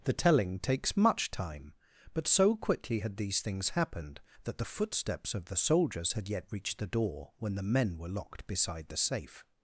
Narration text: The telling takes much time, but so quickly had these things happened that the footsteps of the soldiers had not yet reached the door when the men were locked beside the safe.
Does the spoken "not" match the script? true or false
false